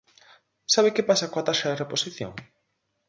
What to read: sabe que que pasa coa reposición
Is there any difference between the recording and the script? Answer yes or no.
yes